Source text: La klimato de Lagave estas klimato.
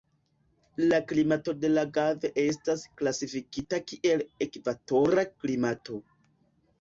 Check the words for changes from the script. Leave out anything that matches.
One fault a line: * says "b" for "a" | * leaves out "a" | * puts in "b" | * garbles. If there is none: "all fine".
* puts in "klasifikita kiel ekvatora"